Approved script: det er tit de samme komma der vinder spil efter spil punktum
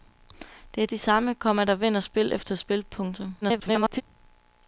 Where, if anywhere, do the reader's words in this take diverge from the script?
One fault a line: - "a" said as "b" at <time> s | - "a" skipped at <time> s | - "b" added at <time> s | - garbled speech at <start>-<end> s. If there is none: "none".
- "tit" skipped at 0.9 s
- garbled speech at 3.4-4.0 s